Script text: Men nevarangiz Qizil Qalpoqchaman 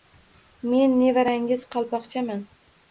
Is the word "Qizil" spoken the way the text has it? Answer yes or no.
no